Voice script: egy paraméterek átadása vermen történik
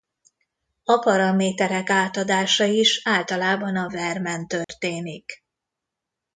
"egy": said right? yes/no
no